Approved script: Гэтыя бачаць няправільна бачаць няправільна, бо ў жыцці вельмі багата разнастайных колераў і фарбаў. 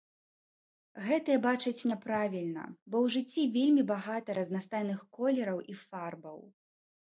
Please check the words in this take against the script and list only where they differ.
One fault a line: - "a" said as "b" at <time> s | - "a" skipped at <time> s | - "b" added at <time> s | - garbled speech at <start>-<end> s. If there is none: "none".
- "бачаць няправільна" skipped at 2.6 s